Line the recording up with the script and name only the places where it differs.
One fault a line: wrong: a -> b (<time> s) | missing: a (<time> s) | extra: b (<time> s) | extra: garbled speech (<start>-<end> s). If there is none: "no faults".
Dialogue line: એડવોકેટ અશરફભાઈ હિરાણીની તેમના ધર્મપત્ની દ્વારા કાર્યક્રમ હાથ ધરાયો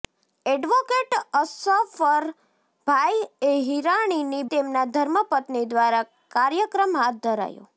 no faults